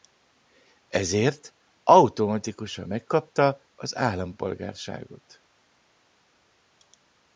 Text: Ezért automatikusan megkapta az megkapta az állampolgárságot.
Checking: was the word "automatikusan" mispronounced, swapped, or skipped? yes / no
no